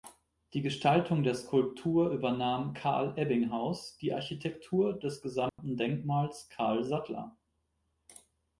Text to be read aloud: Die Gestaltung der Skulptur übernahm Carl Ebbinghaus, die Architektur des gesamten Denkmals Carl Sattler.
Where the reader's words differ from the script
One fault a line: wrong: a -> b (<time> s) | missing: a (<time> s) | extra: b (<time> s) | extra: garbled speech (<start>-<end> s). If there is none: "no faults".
no faults